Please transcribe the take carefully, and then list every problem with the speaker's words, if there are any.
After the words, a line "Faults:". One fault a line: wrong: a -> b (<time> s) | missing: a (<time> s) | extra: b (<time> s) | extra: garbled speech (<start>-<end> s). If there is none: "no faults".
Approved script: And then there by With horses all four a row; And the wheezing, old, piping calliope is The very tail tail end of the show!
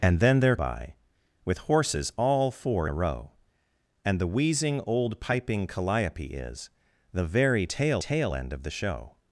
And then there by With horses all four a row; And the wheezing, old, piping calliope is The very tail tail end of the show!
Faults:
no faults